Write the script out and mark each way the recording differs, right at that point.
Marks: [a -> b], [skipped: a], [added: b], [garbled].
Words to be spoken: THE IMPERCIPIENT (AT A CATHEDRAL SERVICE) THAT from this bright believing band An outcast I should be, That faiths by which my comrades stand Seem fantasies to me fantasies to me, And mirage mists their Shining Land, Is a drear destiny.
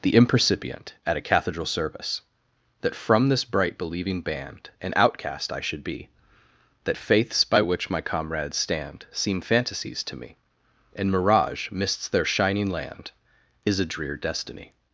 THE IMPERCIPIENT (AT A CATHEDRAL SERVICE) THAT from this bright believing band An outcast I should be, That faiths by which my comrades stand Seem fantasies to me [skipped: fantasies to me,] And mirage mists their Shining Land, Is a drear destiny.